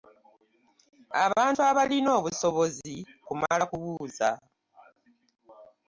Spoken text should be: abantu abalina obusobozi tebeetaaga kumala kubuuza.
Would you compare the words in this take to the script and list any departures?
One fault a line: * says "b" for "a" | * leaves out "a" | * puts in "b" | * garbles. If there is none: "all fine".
* leaves out "tebeetaaga"